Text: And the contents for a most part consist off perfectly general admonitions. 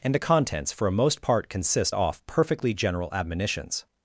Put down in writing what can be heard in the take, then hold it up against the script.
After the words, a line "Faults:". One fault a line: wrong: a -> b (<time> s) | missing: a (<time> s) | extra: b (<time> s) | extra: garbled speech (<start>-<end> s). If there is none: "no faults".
And the contents for a most part consist off perfectly general admonitions.
Faults:
no faults